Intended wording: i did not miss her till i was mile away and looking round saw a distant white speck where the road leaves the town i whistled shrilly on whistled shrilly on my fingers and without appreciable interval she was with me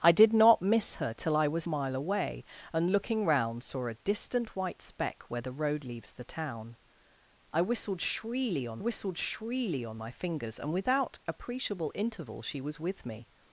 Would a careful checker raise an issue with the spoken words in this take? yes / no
no